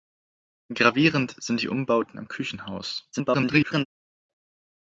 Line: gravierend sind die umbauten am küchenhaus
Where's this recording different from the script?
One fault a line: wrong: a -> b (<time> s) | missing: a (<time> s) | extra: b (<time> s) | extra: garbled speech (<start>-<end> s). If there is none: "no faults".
extra: garbled speech (3.1-3.9 s)